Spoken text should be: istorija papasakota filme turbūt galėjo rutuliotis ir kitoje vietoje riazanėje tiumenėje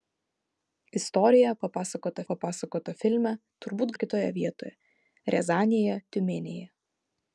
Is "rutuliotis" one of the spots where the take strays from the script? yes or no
yes